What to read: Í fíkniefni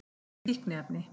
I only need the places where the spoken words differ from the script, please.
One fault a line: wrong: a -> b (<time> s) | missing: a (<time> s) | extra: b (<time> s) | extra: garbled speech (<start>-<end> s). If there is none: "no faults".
no faults